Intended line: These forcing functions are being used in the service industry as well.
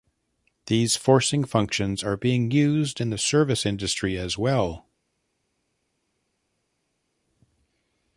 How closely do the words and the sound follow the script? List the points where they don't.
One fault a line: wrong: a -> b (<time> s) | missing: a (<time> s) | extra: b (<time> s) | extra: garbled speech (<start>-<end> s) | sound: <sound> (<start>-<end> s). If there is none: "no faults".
no faults